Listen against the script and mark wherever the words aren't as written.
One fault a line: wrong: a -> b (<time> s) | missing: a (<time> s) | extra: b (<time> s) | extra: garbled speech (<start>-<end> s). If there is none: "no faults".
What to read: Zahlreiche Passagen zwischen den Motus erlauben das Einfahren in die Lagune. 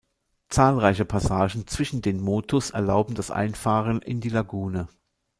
no faults